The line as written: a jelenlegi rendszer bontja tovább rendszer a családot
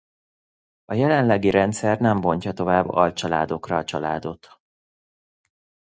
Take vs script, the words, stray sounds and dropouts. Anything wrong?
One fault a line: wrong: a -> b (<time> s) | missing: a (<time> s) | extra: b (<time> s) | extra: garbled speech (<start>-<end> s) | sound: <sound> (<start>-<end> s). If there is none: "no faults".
extra: nem (2.0 s)
wrong: rendszer -> alcsaládokra (2.9 s)